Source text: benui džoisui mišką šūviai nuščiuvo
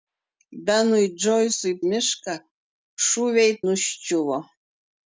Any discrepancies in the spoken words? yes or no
no